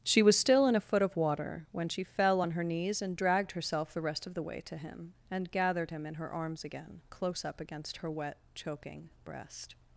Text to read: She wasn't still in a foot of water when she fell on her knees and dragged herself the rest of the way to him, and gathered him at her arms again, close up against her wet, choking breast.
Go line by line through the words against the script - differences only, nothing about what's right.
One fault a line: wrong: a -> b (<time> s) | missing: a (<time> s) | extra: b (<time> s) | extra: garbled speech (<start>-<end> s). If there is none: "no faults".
wrong: wasn't -> was (0.2 s)
wrong: at -> in (6.1 s)